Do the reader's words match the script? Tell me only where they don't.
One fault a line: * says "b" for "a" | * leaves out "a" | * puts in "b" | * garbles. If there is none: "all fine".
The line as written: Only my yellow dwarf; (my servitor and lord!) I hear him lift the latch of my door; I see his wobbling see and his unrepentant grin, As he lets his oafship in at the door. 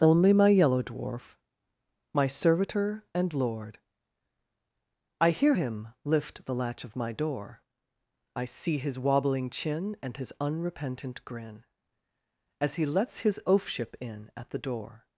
* says "chin" for "see"